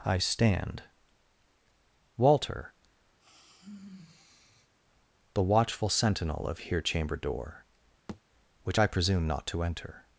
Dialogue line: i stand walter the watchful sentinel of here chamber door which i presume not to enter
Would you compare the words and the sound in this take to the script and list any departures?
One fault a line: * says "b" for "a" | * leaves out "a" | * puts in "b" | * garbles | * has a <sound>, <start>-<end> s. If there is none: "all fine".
* has a sigh, 3.2-4.7 s
* has a thud, 8.1-8.2 s